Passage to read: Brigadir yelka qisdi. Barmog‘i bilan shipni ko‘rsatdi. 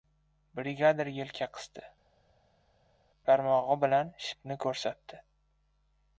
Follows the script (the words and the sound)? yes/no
yes